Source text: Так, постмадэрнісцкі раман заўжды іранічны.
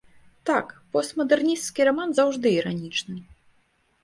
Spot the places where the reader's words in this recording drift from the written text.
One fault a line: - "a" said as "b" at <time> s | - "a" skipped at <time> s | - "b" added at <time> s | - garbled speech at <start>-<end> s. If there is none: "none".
none